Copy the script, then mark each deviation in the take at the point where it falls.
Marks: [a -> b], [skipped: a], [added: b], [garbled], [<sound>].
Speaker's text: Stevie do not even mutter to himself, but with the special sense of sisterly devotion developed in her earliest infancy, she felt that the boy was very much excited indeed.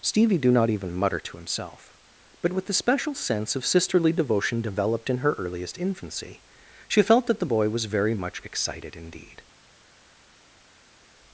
Stevie do not even mutter to himself, but with the special sense of sisterly devotion developed in her earliest infancy, she felt that the boy was very much excited indeed.